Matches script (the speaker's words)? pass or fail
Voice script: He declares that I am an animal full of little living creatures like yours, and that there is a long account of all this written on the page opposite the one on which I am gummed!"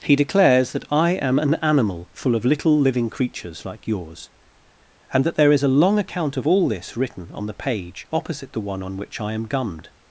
pass